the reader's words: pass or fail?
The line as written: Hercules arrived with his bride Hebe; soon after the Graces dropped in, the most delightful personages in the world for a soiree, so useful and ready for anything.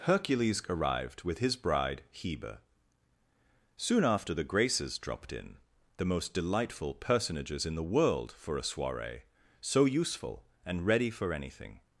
pass